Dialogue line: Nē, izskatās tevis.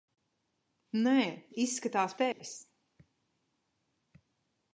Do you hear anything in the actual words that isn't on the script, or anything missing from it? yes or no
no